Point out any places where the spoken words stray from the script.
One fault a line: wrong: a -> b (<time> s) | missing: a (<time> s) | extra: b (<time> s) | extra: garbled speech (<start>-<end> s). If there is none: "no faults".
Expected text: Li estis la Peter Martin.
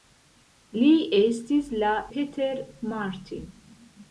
no faults